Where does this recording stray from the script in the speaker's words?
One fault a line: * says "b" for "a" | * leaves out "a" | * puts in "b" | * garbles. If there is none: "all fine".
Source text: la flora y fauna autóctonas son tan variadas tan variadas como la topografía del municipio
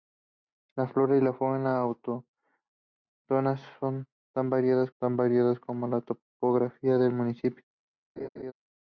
all fine